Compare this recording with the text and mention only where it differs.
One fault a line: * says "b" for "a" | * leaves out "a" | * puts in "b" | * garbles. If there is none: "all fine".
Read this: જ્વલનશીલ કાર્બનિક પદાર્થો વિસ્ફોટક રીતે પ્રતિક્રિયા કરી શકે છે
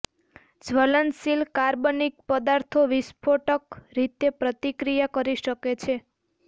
all fine